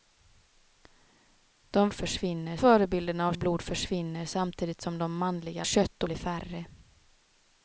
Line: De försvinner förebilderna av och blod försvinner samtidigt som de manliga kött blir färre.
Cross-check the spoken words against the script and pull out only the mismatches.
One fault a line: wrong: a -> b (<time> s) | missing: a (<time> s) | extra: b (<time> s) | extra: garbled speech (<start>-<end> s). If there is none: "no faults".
no faults